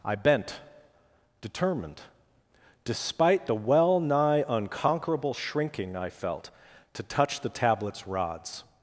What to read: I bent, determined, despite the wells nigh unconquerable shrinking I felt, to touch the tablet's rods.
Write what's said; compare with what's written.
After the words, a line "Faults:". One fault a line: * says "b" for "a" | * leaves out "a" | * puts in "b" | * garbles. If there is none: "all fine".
I bent, determined, despite the well nigh unconquerable shrinking I felt, to touch the tablet's rods.
Faults:
* says "well" for "wells"